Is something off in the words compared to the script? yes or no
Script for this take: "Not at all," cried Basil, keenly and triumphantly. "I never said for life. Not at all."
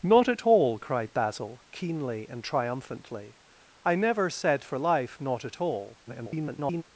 yes